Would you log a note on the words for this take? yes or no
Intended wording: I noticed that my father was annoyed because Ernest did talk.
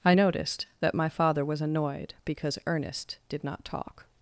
yes